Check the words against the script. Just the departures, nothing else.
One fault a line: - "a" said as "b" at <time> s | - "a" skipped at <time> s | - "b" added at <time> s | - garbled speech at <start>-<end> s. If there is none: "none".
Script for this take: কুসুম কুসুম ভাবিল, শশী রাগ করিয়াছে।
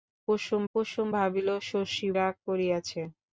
none